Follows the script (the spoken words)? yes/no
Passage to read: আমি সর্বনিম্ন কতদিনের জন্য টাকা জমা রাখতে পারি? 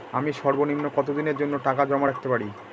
yes